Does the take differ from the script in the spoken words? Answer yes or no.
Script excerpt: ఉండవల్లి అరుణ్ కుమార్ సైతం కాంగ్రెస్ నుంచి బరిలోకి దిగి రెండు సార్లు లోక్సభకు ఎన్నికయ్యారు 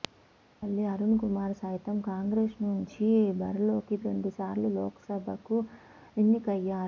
yes